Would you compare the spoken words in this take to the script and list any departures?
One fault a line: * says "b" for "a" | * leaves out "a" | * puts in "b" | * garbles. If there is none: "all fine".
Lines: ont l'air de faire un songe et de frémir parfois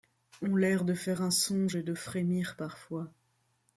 all fine